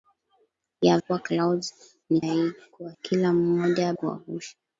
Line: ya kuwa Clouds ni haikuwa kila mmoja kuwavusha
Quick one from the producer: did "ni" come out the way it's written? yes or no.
yes